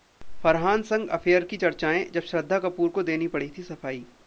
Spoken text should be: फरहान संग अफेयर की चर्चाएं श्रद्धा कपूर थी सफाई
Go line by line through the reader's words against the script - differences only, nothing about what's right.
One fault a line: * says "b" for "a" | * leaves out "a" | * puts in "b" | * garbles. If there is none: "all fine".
* puts in "जब"
* puts in "को देनी पड़ी"